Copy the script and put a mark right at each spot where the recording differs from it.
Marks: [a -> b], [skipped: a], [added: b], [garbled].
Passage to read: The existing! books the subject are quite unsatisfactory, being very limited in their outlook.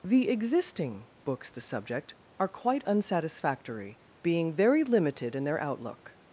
The existing! books the subject are quite unsatisfactory, being very limited in their outlook.